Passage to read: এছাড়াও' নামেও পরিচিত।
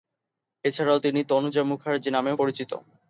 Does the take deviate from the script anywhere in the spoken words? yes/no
yes